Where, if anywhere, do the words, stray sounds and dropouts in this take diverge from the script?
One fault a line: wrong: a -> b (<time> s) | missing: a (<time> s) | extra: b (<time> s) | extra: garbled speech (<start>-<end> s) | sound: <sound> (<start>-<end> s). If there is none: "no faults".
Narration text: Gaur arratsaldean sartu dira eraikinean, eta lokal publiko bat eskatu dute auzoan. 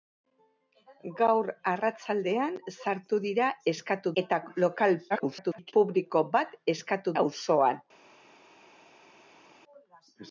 wrong: eraikinean -> eskatu (3.7 s)
extra: garbled speech (5.1-5.7 s)
missing: dute (7.1 s)